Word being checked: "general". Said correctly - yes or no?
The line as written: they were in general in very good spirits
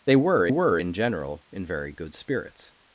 yes